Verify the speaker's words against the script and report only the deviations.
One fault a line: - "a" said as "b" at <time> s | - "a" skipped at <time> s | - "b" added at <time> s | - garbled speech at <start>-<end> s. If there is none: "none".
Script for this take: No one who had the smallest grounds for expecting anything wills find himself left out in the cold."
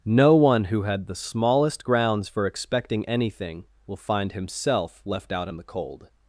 - "wills" said as "will" at 3.9 s